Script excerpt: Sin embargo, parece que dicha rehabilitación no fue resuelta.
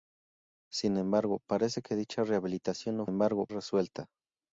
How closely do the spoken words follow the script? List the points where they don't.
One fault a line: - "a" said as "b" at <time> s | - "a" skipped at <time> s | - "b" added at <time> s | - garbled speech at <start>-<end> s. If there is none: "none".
- "fue" said as "embargo" at 3.0 s